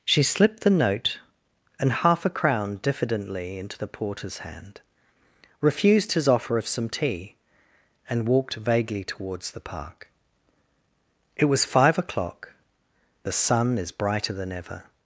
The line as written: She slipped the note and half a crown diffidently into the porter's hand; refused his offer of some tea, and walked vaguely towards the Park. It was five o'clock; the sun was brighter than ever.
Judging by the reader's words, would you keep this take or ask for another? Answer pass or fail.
fail